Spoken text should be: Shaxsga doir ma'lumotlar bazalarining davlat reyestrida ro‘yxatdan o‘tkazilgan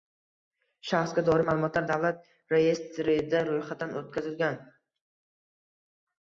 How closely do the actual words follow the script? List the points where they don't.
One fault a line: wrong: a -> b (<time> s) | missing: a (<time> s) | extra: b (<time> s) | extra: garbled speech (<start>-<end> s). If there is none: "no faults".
missing: bazalarining (1.9 s)